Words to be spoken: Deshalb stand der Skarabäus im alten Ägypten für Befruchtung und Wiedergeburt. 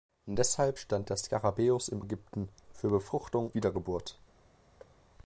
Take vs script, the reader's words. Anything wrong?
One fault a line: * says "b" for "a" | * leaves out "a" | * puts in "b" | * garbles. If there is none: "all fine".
* leaves out "alten"
* leaves out "und"